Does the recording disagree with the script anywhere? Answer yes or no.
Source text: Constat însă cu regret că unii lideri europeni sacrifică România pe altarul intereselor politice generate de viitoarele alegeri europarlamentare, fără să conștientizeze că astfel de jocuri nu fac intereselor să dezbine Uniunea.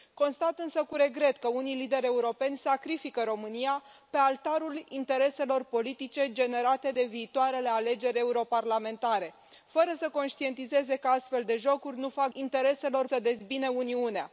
no